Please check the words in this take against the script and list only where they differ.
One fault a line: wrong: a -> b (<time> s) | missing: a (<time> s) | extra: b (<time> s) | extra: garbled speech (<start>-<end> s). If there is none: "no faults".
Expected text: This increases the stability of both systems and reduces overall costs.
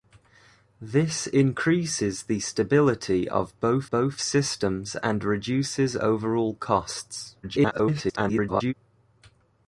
extra: both (3.9 s)
extra: garbled speech (7.4-8.7 s)